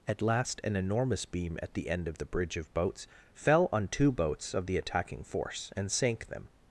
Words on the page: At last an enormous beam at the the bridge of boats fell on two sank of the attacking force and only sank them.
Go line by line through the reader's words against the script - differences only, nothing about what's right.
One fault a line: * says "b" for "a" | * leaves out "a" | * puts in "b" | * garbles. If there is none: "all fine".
* puts in "end of"
* says "boats" for "sank"
* leaves out "only"